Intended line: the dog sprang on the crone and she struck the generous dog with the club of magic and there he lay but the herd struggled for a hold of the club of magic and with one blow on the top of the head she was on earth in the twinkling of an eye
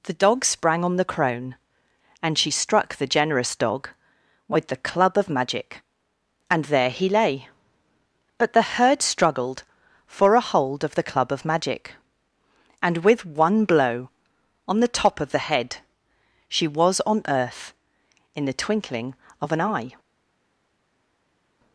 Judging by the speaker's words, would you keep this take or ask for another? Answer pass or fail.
pass